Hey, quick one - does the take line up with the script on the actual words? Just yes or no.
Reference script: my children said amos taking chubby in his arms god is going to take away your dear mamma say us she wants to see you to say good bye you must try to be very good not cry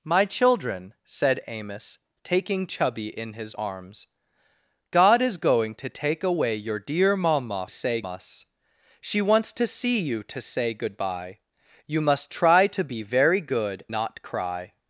yes